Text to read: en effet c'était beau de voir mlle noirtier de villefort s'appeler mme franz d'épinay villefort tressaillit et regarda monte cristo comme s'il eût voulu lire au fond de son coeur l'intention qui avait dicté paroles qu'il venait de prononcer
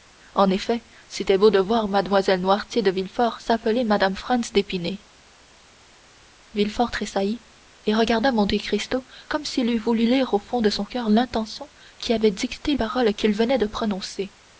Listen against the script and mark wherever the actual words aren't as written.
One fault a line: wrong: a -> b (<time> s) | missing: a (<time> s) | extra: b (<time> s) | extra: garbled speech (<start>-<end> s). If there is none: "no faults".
no faults